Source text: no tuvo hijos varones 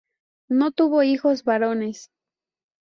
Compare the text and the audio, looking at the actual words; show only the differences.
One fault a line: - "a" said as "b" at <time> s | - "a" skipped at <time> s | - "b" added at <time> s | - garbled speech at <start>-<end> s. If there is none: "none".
none